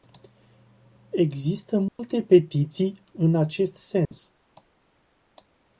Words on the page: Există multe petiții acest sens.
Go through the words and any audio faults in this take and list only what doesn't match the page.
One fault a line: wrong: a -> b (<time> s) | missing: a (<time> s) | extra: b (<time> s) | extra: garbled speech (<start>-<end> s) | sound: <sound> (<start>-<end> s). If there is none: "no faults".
sound: dropout (1.9-2.0 s)
extra: în (3.1 s)
sound: dropout (4.1-4.1 s)